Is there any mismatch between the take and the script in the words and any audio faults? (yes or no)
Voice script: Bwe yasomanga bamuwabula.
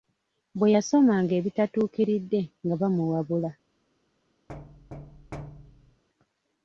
yes